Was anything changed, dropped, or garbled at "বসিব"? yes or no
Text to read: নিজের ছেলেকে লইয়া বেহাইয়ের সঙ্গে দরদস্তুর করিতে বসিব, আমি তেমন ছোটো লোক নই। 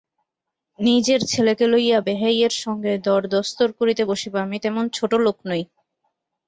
no